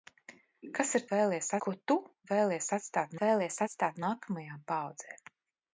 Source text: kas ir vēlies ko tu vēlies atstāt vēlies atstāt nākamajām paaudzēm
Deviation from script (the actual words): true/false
false